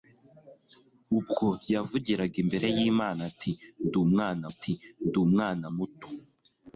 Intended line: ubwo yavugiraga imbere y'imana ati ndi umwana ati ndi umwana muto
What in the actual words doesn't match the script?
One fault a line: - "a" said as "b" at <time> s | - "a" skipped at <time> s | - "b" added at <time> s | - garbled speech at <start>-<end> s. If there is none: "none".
none